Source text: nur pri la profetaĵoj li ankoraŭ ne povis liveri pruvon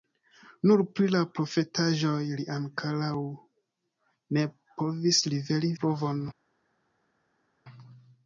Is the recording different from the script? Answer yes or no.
no